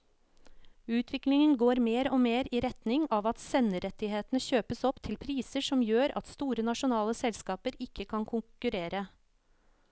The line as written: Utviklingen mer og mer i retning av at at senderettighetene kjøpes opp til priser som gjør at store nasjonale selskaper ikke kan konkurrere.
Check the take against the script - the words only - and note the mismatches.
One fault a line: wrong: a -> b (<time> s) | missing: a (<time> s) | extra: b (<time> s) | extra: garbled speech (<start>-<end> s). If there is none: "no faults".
extra: går (1.6 s)
missing: at (3.4 s)